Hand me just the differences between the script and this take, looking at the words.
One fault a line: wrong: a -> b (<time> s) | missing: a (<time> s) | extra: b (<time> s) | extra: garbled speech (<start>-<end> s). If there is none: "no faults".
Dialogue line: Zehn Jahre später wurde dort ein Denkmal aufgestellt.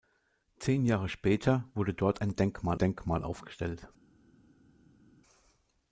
extra: Denkmal (2.8 s)